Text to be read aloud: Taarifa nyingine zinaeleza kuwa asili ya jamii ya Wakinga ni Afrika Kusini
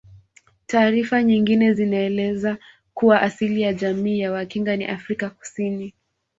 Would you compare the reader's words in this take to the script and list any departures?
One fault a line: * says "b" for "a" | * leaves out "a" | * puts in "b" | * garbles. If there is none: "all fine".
all fine